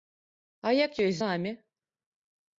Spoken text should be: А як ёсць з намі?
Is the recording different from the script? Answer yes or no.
yes